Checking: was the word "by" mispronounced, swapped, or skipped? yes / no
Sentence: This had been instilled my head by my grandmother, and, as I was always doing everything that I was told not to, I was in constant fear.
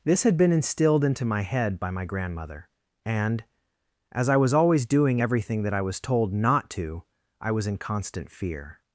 no